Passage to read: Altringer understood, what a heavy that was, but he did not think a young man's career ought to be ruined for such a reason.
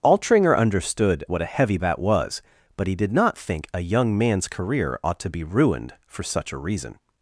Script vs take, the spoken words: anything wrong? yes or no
no